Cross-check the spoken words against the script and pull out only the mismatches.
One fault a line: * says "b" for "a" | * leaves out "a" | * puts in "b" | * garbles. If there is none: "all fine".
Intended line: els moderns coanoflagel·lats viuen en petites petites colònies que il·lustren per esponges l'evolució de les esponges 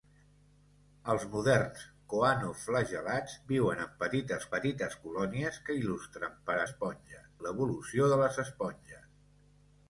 all fine